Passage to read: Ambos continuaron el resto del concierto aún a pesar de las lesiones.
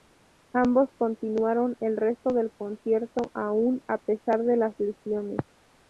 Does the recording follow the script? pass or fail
pass